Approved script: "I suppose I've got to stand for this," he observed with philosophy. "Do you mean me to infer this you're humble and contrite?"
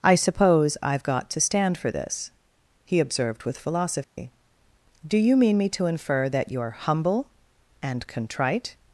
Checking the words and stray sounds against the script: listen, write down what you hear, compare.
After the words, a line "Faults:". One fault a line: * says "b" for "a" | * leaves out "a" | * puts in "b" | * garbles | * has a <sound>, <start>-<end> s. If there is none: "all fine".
"I suppose I've got to stand for this," he observed with philosophy. "Do you mean me to infer that you're humble and contrite?"
Faults:
* has a dropout, 4.0-4.2 s
* says "that" for "this"